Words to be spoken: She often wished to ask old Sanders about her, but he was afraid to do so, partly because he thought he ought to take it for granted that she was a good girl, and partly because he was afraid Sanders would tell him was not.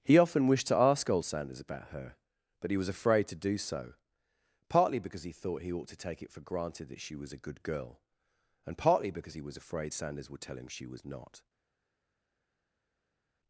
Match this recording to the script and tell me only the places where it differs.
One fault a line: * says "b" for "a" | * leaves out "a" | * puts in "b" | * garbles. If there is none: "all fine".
* says "He" for "She"
* puts in "she"